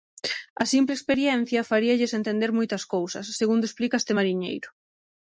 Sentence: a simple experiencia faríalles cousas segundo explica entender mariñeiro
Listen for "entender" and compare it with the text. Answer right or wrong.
wrong